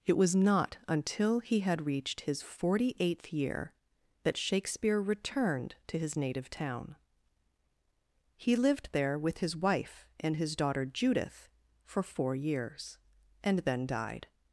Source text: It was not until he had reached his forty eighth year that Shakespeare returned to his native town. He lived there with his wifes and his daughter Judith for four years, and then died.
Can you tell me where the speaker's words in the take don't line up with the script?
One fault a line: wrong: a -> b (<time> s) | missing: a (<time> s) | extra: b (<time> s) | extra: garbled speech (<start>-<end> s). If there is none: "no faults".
wrong: wifes -> wife (9.6 s)